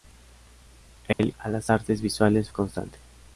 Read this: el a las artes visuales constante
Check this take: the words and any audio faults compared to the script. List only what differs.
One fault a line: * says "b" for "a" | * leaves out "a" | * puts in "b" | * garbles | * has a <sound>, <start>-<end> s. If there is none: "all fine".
* has a dropout, 1.1-1.2 s